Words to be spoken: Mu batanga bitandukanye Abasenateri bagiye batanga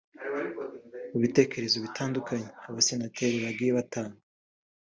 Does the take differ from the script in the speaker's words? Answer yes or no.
yes